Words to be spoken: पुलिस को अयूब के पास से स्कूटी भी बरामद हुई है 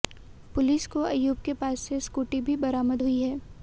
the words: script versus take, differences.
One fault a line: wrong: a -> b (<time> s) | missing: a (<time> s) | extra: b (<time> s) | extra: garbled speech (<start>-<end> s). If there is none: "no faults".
no faults